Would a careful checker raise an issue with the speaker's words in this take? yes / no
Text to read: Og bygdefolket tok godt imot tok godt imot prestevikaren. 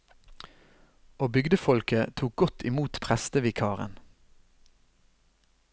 yes